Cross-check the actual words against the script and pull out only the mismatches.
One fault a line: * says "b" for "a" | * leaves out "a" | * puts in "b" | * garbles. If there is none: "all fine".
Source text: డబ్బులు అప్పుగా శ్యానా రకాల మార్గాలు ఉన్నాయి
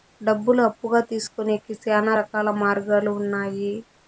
* puts in "తీసుకొనేకి"